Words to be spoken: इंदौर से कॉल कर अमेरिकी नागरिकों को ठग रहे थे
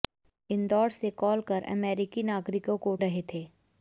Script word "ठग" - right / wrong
wrong